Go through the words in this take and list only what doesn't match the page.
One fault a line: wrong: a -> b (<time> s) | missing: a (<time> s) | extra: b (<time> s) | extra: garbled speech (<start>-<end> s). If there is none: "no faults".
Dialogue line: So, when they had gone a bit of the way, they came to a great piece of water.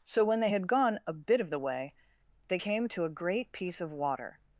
no faults